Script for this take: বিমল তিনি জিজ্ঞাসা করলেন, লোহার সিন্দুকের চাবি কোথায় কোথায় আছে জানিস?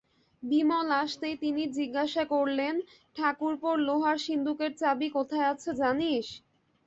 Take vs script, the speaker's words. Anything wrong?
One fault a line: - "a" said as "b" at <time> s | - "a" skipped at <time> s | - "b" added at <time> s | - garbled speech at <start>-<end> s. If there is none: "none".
- "আসতেই" added at 1.0 s
- "ঠাকুরপোর" added at 3.1 s
- "কোথায়" skipped at 5.5 s